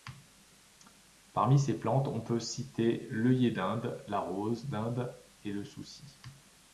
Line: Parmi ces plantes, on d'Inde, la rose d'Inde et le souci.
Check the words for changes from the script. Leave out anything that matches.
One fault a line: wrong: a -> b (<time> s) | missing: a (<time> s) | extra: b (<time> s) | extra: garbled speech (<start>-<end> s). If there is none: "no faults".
extra: peut citer l'œillet (2.2 s)